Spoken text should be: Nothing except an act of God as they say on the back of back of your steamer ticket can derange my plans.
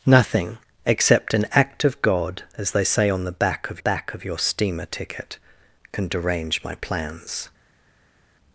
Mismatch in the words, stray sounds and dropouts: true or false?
false